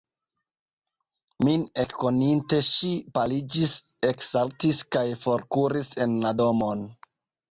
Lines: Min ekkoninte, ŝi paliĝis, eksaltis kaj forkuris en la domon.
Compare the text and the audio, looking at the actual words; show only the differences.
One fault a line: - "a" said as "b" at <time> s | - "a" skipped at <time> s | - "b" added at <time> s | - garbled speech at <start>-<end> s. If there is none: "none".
none